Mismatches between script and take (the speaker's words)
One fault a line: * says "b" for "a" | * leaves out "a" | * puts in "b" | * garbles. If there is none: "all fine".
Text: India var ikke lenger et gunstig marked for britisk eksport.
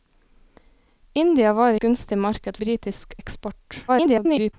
* leaves out "ikke lenger et"
* leaves out "for"
* garbles